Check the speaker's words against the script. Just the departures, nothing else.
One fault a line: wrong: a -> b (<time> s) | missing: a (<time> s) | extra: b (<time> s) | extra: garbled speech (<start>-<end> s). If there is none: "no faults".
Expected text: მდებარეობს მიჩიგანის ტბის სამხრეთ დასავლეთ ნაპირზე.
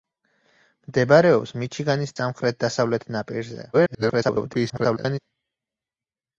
missing: ტბის (2.1 s)
extra: garbled speech (3.7-5.2 s)